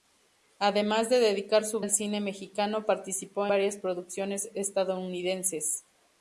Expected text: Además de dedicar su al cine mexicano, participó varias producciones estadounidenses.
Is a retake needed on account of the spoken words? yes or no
no